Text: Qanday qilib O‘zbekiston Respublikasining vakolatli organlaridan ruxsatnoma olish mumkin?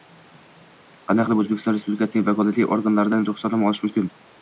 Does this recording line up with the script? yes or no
yes